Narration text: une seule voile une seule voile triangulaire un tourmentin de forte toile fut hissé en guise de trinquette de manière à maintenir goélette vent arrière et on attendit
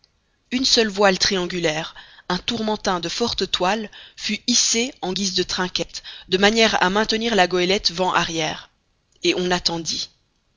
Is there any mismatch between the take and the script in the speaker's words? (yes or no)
yes